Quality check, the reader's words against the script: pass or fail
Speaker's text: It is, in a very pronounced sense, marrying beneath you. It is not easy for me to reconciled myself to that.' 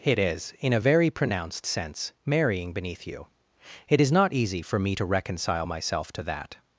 fail